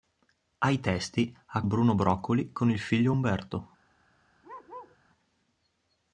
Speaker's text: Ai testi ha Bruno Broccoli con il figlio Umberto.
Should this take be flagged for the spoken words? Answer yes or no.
no